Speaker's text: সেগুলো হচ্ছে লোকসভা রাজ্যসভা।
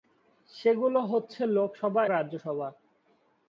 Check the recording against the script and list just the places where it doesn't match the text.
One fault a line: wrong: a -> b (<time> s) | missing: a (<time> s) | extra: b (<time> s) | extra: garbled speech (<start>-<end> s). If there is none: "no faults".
no faults